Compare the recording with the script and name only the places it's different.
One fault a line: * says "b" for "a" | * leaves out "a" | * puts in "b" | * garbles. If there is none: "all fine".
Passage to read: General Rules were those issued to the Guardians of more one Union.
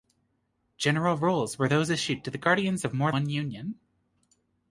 all fine